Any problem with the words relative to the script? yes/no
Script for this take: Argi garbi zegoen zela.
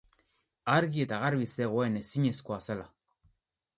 yes